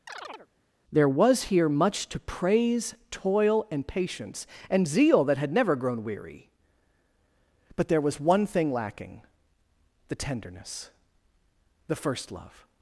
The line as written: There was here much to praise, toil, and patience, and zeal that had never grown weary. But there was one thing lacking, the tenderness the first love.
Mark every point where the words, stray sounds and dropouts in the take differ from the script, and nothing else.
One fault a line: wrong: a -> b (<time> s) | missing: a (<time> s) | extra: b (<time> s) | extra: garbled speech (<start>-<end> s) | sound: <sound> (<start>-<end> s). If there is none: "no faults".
sound: chirp (0.1-0.5 s)